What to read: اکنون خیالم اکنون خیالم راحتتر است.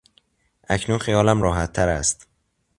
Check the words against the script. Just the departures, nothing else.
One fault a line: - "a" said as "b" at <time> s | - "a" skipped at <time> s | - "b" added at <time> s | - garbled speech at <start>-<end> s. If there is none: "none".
- "اکنون خیالم" skipped at 1.4 s